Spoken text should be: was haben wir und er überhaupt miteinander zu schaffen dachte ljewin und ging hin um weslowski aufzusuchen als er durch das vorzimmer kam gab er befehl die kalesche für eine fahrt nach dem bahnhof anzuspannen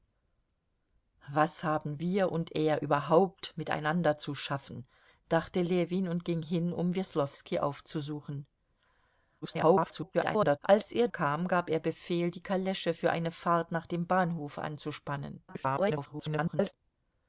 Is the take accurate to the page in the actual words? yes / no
no